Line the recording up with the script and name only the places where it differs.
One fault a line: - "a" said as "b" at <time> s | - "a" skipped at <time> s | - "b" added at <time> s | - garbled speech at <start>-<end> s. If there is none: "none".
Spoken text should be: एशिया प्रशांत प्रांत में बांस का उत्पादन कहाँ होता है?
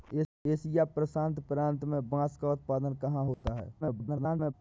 - garbled speech at 3.8-4.5 s